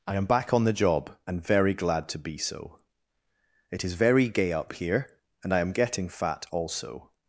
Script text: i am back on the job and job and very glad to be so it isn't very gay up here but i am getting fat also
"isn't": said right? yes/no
no